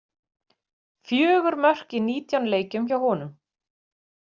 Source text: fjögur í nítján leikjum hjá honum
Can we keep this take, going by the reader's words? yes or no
no